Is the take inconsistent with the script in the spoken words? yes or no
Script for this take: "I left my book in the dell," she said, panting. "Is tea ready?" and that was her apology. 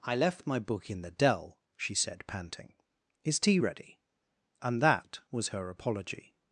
no